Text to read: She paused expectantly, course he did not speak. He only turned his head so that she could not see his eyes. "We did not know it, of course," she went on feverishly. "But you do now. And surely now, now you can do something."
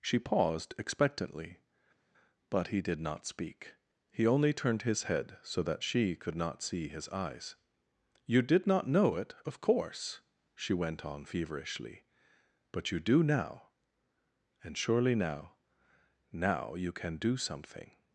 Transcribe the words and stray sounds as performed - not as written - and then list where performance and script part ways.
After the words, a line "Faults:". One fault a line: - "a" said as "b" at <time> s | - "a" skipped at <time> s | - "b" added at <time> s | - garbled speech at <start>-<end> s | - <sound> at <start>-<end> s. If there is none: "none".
She paused expectantly, but he did not speak. He only turned his head so that she could not see his eyes. "You did not know it, of course," she went on feverishly. "But you do now. And surely now, now you can do something."
Faults:
- "course" said as "but" at 2.5 s
- "We" said as "You" at 8.2 s